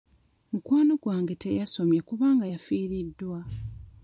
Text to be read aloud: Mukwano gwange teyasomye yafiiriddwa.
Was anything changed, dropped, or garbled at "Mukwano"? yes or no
no